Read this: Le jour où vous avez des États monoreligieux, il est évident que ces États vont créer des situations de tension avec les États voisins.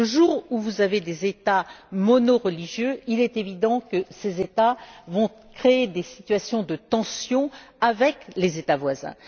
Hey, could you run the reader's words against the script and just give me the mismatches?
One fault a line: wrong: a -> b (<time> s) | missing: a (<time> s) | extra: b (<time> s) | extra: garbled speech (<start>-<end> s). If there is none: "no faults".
no faults